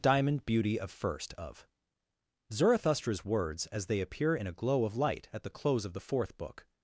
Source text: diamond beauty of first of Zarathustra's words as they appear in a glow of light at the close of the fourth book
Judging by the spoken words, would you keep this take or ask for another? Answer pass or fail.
pass